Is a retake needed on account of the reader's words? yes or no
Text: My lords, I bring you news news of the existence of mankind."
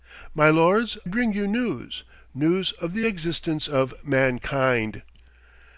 yes